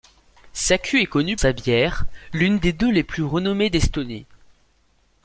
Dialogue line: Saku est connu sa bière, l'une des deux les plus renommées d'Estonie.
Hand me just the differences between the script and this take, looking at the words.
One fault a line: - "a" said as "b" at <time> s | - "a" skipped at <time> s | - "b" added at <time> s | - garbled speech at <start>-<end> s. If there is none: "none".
none